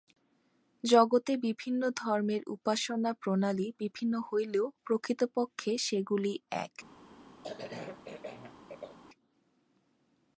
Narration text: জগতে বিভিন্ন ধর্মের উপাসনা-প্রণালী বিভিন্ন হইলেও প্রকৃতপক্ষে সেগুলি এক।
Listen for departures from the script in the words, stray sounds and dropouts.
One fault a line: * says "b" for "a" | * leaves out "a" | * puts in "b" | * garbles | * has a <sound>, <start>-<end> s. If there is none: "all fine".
* has a cough, 7.4-9.0 s